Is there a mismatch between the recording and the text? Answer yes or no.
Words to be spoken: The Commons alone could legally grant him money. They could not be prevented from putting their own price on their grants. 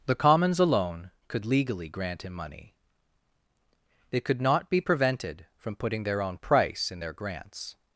yes